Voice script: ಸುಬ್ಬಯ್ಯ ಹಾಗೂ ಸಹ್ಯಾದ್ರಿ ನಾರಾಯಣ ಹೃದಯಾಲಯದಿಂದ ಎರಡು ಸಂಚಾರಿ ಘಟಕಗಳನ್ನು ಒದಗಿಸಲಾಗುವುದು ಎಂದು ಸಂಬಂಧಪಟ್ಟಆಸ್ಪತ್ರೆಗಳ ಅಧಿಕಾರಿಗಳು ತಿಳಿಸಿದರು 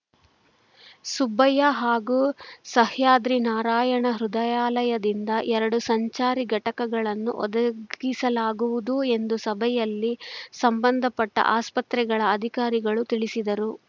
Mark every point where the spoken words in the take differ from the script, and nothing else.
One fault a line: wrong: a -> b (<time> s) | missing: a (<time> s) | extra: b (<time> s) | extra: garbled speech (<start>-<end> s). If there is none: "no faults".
extra: ಸಭೆಯಲ್ಲಿ (9.5 s)